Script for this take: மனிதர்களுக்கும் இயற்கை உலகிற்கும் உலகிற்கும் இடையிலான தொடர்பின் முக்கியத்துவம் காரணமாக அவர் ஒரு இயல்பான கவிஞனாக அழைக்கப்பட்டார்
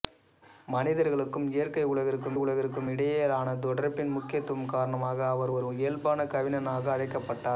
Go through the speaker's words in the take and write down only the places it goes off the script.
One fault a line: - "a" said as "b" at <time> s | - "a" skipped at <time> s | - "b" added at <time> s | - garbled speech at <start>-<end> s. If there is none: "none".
none